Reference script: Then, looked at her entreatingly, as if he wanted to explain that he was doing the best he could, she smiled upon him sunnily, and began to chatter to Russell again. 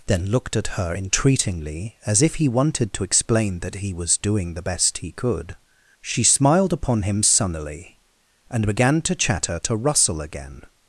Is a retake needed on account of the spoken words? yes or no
no